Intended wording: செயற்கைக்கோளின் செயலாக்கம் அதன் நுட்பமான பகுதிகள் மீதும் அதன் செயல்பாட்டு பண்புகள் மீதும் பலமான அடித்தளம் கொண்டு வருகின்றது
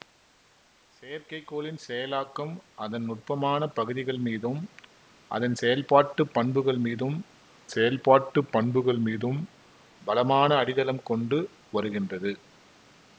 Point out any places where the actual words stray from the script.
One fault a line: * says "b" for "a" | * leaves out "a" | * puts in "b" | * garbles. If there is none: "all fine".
* puts in "செயல்பாட்டு பண்புகள் மீதும்"